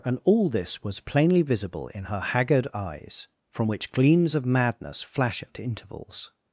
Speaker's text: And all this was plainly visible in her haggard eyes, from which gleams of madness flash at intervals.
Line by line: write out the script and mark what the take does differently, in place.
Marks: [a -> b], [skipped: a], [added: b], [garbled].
And all this was plainly visible in her haggard eyes, from which gleams of madness flash at intervals.